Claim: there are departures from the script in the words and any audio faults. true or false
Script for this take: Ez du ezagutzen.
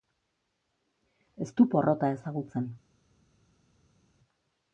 true